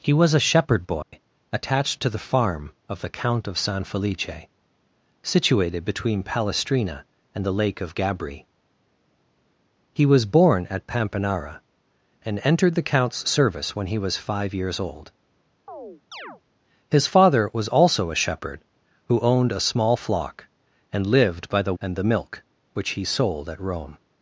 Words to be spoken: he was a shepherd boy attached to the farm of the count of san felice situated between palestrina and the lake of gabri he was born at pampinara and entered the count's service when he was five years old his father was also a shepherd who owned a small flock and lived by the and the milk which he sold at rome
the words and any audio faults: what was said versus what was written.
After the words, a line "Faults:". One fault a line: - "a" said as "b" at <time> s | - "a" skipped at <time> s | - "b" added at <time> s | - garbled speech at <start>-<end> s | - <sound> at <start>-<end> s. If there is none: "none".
he was a shepherd boy attached to the farm of the count of san felice situated between palestrina and the lake of gabri he was born at pampinara and entered the count's service when he was five years old his father was also a shepherd who owned a small flock and lived by the and the milk which he sold at rome
Faults:
- dropout at 1.0-1.1 s
- chirp at 15.7-16.4 s